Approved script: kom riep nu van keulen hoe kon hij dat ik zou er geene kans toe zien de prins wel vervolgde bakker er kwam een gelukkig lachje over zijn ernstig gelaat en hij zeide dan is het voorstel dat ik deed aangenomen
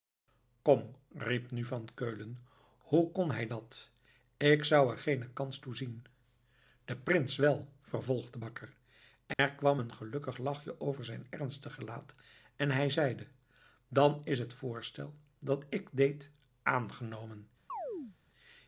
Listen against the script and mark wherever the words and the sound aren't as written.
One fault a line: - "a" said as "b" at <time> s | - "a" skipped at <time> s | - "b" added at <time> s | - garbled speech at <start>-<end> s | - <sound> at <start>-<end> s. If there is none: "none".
- dropout at 9.3-9.4 s
- chirp at 17.7-18.2 s